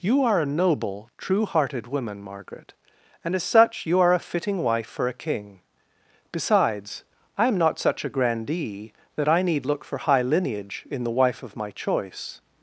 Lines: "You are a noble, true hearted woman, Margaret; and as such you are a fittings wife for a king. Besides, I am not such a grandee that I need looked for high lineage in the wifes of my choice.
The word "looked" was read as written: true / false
false